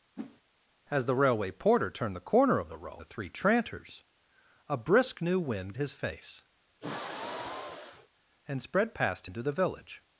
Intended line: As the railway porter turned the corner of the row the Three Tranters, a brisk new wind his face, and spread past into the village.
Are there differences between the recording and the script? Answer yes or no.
no